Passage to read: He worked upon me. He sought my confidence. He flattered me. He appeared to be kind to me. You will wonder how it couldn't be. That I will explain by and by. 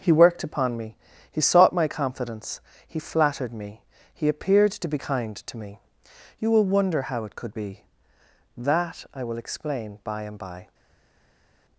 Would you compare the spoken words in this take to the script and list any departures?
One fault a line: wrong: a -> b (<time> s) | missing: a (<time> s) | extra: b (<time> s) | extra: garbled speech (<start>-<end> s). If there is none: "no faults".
wrong: couldn't -> could (7.3 s)